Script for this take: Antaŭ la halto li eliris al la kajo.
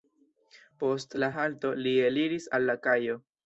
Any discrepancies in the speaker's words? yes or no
yes